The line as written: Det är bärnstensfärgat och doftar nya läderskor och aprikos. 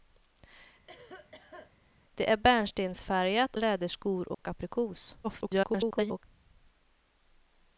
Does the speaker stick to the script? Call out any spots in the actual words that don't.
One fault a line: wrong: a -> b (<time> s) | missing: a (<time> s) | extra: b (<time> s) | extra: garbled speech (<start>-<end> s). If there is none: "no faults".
missing: och doftar nya (3.6 s)
extra: garbled speech (5.2-6.2 s)